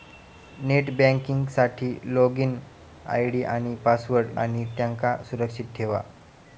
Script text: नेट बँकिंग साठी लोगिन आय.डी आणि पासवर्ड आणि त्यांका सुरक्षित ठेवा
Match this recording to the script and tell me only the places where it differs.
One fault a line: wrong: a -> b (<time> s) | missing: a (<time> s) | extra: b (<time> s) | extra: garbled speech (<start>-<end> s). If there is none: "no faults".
no faults